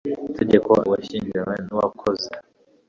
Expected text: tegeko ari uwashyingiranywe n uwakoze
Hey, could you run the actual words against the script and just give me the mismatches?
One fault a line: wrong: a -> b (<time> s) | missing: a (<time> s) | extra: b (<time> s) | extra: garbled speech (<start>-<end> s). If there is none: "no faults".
missing: ari (0.7 s)